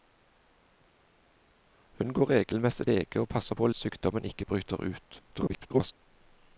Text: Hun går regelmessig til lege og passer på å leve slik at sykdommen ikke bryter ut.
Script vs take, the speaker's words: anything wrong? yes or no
yes